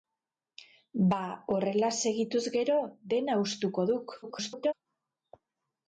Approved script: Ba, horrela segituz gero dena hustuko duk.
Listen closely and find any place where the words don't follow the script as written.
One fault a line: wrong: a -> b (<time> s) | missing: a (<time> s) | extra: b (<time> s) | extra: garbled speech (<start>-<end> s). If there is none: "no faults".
extra: garbled speech (4.2-4.7 s)